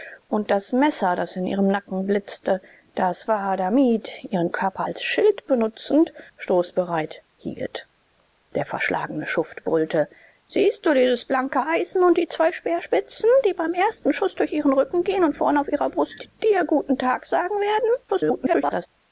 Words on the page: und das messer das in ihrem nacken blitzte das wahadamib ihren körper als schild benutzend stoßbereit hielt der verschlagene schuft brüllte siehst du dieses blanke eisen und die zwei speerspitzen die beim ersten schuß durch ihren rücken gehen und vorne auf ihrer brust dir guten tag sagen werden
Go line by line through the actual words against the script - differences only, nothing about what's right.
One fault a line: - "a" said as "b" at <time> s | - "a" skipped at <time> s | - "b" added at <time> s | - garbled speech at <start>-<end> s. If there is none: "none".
- garbled speech at 18.1-18.9 s